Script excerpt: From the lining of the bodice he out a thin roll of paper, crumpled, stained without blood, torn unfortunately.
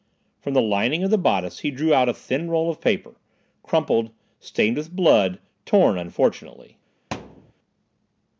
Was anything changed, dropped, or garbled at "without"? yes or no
yes